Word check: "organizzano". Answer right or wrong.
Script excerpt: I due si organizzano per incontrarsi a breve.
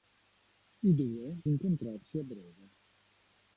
wrong